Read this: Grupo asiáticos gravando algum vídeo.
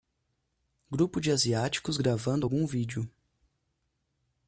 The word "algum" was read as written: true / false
true